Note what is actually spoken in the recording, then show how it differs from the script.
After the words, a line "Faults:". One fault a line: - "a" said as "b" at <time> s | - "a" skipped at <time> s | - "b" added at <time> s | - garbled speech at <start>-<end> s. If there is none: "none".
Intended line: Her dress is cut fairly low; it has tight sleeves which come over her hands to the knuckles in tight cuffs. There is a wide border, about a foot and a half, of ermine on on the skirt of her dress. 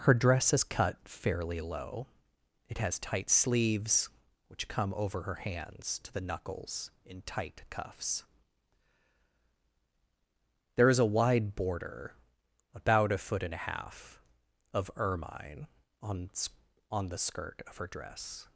Her dress is cut fairly low; it has tight sleeves which come over her hands to the knuckles in tight cuffs. There is a wide border, about a foot and a half, of ermine on on the skirt of her dress.
Faults:
none